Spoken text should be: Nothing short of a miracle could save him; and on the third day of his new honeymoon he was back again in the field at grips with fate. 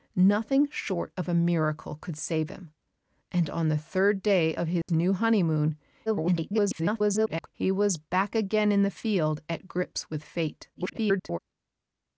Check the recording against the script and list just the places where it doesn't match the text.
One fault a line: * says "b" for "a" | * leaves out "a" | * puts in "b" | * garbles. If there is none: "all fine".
* garbles
* garbles